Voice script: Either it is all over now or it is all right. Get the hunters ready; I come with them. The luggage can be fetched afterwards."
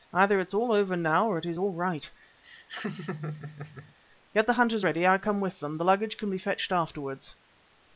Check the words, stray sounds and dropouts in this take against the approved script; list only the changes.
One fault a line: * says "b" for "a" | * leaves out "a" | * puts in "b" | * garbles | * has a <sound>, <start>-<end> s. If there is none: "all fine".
* has a laugh, 2.4-3.9 s